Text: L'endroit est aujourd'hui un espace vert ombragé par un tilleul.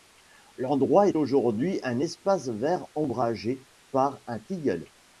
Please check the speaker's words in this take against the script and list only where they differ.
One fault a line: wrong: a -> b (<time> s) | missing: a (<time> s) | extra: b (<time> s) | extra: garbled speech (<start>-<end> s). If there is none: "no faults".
no faults